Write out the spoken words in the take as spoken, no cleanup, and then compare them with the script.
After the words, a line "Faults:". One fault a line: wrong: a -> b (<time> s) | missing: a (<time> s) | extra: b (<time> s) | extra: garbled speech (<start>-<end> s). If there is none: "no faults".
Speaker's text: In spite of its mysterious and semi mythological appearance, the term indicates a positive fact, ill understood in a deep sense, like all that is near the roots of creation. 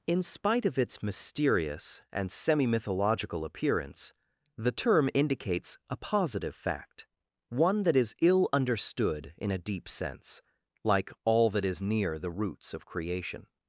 In spite of its mysterious and semi mythological appearance, the term indicates a positive fact, one that is ill understood in a deep sense, like all that is near the roots of creation.
Faults:
extra: one that is (7.5 s)